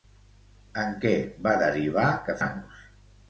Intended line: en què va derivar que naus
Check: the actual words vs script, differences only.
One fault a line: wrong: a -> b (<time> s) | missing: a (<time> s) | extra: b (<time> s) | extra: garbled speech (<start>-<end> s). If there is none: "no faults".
no faults